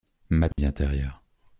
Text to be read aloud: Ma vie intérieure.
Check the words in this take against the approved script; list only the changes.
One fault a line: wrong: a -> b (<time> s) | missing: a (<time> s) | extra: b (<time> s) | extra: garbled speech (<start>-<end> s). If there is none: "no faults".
no faults